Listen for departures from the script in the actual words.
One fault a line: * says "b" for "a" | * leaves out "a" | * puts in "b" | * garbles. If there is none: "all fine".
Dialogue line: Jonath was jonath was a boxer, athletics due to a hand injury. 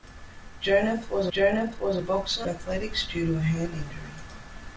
all fine